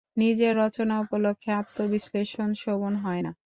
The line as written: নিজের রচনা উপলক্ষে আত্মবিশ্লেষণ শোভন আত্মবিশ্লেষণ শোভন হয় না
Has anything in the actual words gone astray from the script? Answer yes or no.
yes